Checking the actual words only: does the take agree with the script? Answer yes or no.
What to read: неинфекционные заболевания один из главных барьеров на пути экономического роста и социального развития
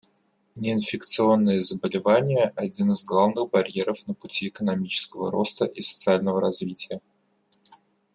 yes